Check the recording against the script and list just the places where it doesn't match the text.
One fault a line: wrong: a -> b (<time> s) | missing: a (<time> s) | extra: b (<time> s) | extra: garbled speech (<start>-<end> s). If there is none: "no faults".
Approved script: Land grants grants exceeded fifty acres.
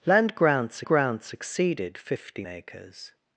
no faults